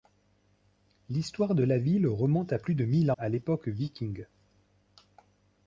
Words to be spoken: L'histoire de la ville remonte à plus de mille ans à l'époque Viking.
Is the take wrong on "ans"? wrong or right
wrong